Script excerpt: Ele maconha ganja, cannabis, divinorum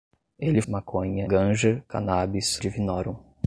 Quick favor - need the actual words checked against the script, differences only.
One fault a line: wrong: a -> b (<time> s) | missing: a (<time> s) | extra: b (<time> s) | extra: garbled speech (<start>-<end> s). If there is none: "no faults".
no faults